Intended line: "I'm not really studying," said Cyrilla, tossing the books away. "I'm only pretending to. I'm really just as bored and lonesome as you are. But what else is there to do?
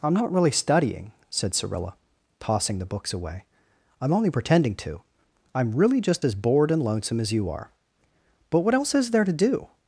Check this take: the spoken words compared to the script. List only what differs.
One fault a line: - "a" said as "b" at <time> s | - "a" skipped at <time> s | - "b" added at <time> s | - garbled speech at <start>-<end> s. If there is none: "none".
none